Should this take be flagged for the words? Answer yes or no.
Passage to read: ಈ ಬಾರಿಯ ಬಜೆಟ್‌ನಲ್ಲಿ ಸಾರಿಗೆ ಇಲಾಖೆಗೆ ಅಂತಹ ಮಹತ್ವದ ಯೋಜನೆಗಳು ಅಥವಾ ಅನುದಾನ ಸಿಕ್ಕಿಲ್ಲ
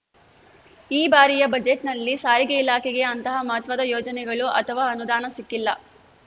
no